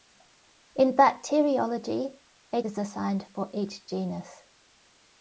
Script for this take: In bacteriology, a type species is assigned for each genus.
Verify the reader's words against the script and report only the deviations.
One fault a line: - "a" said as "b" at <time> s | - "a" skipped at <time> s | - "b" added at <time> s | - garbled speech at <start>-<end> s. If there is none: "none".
- "type species" skipped at 2.6 s